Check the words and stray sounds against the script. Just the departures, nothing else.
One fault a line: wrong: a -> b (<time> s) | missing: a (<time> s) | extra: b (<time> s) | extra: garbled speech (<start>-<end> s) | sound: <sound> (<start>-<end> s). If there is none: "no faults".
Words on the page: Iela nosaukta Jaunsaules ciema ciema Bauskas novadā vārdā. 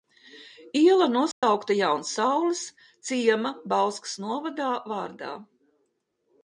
sound: dropout (1.3-1.4 s)
missing: ciema (3.5 s)